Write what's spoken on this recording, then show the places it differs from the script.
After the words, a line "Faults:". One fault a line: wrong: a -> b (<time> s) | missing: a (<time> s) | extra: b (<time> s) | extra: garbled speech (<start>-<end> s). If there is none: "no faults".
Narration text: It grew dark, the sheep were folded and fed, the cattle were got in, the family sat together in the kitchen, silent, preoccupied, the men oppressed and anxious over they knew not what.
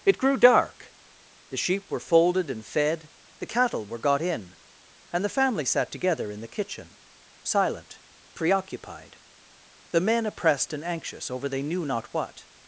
It grew dark, the sheep were folded and fed, the cattle were got in, and the family sat together in the kitchen, silent, preoccupied, the men oppressed and anxious over they knew not what.
Faults:
extra: and (5.1 s)